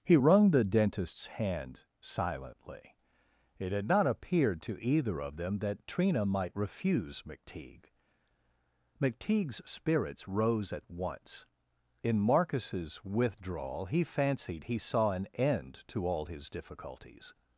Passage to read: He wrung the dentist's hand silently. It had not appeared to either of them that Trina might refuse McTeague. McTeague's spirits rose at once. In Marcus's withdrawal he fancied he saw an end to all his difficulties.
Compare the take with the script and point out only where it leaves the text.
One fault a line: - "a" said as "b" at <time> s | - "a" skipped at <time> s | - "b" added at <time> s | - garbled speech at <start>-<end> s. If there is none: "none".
none